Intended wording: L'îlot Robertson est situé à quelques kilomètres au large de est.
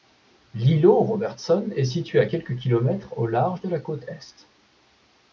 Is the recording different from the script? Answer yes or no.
yes